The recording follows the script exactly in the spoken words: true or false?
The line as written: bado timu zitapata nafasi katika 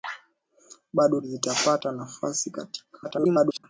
false